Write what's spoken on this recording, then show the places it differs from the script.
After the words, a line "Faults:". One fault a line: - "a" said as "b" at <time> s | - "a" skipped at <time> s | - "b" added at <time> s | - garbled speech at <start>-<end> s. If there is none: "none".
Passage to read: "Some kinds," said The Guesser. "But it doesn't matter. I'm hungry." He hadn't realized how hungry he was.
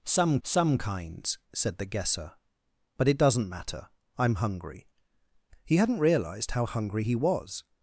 "Some some kinds," said The Guesser. "But it doesn't matter. I'm hungry." He hadn't realized how hungry he was.
Faults:
- "some" added at 0.4 s